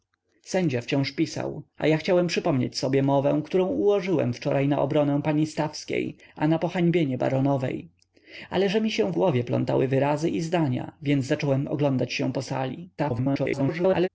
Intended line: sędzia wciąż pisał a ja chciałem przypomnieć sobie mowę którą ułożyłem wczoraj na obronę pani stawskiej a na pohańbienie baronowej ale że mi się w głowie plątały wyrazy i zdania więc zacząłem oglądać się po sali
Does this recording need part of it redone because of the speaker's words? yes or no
yes